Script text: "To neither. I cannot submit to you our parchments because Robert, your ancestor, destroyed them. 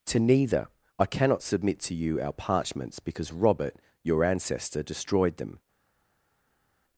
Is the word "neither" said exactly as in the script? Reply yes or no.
yes